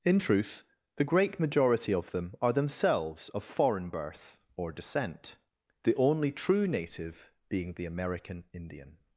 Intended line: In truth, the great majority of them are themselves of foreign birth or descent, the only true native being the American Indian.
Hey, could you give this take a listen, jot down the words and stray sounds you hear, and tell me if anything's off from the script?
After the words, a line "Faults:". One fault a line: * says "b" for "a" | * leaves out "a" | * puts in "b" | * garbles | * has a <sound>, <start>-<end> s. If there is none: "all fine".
In truth, the great majority of them are themselves of foreign birth or descent, the only true native being the American Indian.
Faults:
all fine